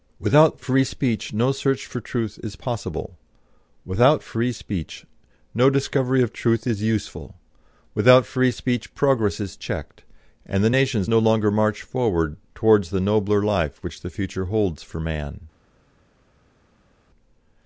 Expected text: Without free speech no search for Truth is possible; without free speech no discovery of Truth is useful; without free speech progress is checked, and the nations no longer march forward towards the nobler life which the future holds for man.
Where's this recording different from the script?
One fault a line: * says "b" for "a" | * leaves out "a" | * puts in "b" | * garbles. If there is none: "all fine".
all fine